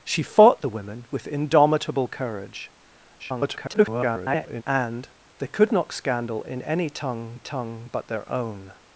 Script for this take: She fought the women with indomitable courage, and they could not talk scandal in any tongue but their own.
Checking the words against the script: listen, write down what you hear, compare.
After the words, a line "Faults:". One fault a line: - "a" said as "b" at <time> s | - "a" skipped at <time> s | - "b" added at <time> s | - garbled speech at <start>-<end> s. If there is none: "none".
She fought the women with indomitable courage, [garbled] and they could not scandal in any tongue tongue but their own.
Faults:
- garbled speech at 3.2-4.6 s
- "talk" skipped at 5.9 s
- "tongue" added at 7.4 s